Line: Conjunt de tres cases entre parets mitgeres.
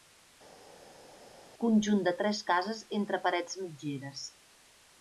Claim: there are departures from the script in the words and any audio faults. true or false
false